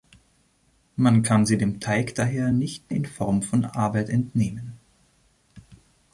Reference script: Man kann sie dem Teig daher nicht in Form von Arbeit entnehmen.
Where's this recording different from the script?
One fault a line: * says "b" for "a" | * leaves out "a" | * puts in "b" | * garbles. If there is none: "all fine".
all fine